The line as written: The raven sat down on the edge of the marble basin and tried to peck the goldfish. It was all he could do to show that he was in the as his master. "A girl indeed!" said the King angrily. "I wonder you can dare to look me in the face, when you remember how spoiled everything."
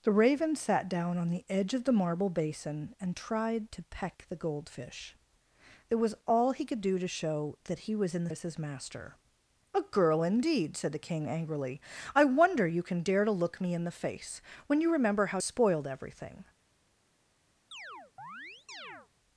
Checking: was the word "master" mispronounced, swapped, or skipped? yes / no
no